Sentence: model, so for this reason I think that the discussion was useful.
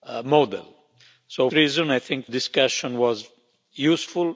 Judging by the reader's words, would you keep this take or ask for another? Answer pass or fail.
fail